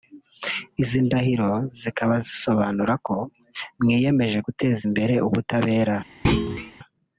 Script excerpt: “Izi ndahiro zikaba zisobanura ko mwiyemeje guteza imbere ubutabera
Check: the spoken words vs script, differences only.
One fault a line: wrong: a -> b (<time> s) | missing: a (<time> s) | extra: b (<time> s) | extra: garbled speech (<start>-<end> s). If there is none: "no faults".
no faults